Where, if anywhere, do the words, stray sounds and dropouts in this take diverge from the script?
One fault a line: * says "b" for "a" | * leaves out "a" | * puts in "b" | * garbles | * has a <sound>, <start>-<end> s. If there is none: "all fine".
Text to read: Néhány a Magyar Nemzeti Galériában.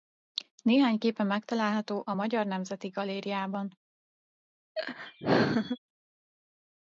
* puts in "képe megtalálható"
* has a laugh, 4.8-5.8 s